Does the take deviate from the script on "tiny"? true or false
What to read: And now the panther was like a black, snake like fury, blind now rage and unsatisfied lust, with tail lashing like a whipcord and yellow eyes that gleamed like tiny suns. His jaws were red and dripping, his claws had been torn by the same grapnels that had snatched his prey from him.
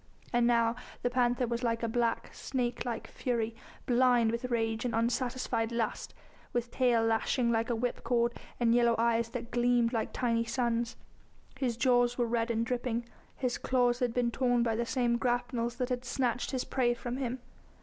false